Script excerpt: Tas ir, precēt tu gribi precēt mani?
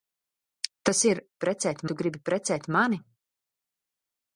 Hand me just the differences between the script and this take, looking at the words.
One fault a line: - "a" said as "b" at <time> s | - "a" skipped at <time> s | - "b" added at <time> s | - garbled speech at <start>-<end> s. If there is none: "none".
none